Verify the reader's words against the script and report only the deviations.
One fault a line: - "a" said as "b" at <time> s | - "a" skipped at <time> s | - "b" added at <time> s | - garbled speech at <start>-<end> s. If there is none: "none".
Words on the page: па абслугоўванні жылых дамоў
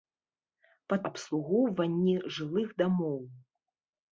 none